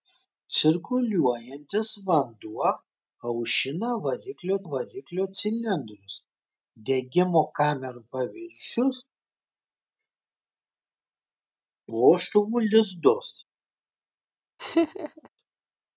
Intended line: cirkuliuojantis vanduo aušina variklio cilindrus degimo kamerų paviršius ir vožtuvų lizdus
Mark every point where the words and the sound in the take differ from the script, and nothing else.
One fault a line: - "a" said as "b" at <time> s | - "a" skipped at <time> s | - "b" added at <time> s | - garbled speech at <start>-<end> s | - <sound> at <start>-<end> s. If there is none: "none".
- "variklio" added at 4.7 s
- "ir" skipped at 9.0 s
- laugh at 14.6-15.3 s